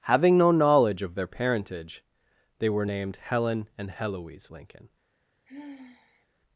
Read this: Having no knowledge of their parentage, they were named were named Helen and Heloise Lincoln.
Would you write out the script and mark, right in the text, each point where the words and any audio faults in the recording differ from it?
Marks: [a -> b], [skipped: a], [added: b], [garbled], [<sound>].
Having no knowledge of their parentage, they were named [skipped: were named] Helen and Heloise Lincoln. [sigh]